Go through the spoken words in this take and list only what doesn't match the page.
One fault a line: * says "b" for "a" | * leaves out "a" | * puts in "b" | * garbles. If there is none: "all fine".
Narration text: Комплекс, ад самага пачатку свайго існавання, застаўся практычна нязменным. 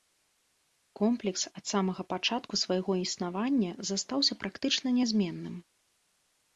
all fine